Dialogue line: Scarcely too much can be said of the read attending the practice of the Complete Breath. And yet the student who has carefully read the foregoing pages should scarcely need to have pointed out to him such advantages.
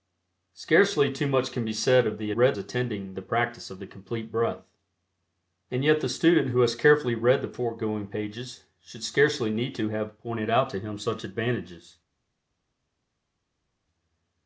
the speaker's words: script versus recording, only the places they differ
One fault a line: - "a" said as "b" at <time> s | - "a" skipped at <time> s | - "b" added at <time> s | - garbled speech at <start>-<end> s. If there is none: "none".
none